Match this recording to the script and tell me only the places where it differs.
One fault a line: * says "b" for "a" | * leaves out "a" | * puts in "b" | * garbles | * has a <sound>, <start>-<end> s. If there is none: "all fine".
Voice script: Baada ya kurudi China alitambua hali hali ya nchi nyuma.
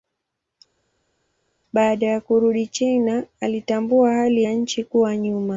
* leaves out "hali"
* puts in "kuwa"